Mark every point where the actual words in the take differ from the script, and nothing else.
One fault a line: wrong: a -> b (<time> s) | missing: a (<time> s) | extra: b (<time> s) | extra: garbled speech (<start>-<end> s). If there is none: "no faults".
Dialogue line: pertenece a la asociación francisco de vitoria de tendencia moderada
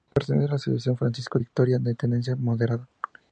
missing: de (1.4 s)